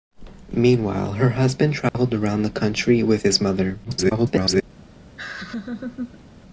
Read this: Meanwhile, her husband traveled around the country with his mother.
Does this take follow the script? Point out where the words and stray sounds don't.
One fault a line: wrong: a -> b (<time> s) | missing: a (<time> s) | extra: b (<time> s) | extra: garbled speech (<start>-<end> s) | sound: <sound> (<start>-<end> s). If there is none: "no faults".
sound: dropout (1.9-1.9 s)
extra: garbled speech (3.8-4.6 s)
sound: laugh (5.2-6.2 s)